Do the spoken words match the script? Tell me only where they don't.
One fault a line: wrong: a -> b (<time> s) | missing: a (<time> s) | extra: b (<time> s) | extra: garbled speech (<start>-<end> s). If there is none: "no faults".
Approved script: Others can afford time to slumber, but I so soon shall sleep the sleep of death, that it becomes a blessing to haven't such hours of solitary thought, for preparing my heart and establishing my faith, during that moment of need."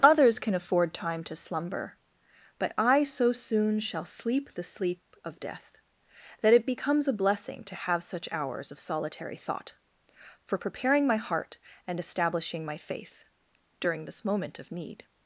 wrong: haven't -> have (7.8 s)
wrong: that -> this (14.0 s)